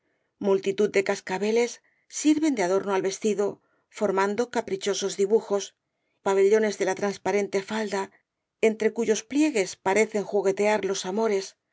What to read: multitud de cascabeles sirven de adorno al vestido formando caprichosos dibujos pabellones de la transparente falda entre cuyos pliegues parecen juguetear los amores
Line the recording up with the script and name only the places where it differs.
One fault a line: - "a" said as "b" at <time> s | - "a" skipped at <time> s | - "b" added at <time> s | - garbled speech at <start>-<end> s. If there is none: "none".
none